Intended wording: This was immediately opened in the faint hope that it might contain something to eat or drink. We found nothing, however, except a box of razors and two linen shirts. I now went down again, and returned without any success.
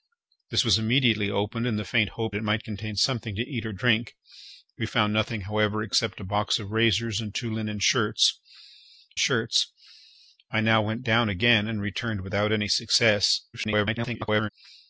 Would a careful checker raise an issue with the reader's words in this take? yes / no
yes